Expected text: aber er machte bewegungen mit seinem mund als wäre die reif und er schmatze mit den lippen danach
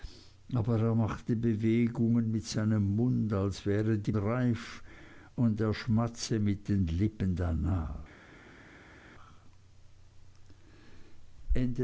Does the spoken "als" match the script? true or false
true